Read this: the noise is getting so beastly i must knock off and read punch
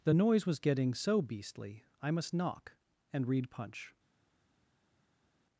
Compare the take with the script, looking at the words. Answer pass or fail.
fail